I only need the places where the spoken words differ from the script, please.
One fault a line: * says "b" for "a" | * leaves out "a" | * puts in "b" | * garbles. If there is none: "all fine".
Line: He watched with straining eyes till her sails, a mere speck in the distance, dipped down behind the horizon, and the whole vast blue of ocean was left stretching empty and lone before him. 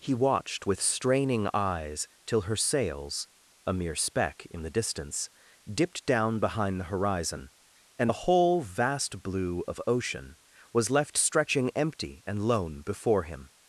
all fine